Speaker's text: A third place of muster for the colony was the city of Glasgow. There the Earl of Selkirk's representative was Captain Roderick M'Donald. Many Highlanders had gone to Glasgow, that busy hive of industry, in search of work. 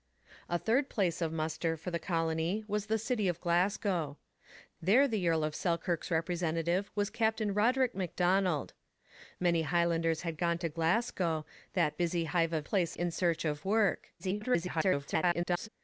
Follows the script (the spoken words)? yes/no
no